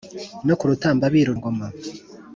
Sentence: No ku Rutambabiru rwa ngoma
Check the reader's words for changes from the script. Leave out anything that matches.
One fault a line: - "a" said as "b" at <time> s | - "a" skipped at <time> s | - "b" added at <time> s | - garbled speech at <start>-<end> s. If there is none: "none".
- "rwa" skipped at 1.3 s